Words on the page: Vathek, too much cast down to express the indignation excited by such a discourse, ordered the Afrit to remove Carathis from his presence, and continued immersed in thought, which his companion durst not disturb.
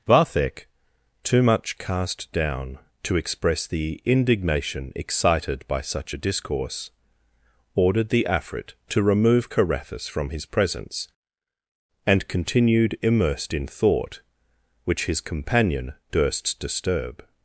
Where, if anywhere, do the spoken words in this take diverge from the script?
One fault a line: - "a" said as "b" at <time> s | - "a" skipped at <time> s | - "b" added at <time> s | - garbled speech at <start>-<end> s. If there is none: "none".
- "not" skipped at 16.6 s